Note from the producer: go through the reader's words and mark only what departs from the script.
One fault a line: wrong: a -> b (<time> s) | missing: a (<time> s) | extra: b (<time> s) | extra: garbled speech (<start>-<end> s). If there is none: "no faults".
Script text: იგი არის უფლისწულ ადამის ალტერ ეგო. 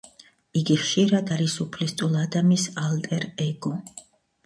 extra: ხშირად (0.8 s)